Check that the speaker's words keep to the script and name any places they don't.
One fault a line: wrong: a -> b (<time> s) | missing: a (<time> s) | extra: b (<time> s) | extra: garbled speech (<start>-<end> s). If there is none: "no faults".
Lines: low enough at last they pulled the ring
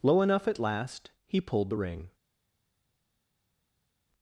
wrong: they -> he (1.3 s)